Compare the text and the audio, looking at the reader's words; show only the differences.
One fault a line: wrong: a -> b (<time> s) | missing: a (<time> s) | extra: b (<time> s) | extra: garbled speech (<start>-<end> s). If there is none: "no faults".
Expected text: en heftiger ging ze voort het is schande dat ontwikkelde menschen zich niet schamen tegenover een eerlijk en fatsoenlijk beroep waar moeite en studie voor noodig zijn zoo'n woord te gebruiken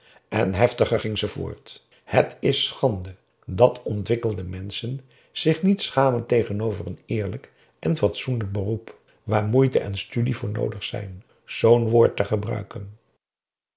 no faults